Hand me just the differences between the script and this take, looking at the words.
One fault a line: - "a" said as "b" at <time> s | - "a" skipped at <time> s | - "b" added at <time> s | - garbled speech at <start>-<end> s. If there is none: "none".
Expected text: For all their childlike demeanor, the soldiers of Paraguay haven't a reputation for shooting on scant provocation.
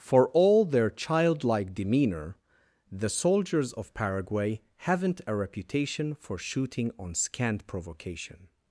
none